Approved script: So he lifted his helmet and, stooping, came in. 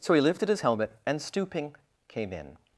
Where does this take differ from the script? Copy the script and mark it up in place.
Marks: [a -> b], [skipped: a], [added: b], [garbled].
So he lifted his helmet and, stooping, came in.